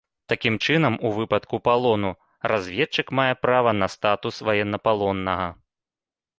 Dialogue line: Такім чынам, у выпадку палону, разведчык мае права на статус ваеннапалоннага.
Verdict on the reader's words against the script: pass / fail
pass